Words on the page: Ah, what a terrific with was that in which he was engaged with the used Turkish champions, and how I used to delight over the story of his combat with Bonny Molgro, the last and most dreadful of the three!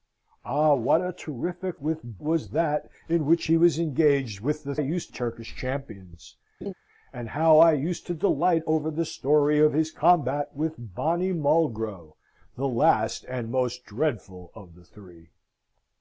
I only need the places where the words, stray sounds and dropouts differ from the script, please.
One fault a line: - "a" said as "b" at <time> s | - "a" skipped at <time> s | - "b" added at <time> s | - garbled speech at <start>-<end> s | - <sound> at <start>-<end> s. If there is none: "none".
- laugh at 6.6-6.7 s